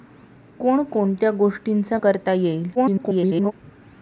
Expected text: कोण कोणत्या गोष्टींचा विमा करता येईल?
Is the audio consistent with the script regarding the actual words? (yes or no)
no